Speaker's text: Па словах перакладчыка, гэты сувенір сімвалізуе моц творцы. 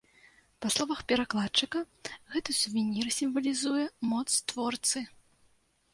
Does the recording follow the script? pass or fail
pass